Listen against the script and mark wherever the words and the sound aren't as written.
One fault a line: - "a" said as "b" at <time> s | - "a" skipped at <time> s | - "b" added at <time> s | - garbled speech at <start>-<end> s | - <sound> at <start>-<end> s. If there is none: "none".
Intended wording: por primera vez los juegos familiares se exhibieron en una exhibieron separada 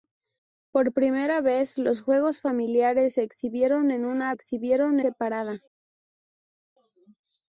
none